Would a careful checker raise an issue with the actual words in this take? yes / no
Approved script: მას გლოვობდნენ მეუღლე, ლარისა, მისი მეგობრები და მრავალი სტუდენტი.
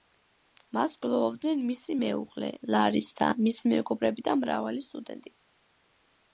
yes